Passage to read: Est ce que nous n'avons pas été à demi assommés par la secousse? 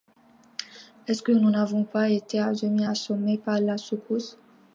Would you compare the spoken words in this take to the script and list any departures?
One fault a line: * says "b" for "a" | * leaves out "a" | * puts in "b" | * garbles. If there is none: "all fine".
all fine